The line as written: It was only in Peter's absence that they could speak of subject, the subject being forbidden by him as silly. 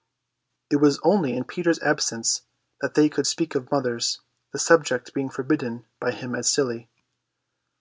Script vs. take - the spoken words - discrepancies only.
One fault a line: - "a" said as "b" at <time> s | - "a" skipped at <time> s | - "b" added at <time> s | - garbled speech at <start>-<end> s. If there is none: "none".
- "subject" said as "mothers" at 3.7 s